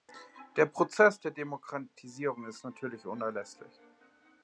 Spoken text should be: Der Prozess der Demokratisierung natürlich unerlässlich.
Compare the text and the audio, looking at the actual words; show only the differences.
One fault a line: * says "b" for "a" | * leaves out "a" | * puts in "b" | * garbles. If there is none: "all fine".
* puts in "ist"